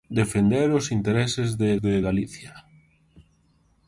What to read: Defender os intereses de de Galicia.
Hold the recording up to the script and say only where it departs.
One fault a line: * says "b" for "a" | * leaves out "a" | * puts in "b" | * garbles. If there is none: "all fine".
all fine